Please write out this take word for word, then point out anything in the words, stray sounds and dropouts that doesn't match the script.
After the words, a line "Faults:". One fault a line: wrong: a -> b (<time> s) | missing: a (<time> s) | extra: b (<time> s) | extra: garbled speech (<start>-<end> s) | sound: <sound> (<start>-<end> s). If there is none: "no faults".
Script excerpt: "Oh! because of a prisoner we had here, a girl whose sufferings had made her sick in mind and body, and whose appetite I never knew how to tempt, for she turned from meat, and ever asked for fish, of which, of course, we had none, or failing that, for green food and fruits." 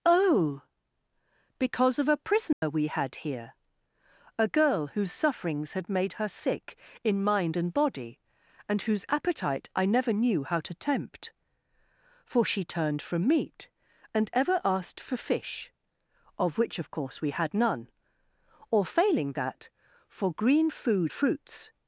"Oh! because of a prisoner we had here, a girl whose sufferings had made her sick in mind and body, and whose appetite I never knew how to tempt, for she turned from meat, and ever asked for fish, of which, of course, we had none, or failing that, for green food fruits."
Faults:
sound: dropout (2.5-2.6 s)
missing: and (21.1 s)